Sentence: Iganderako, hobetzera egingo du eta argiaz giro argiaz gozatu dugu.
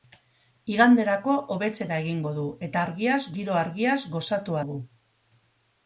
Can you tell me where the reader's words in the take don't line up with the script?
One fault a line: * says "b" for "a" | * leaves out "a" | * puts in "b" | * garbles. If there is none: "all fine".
all fine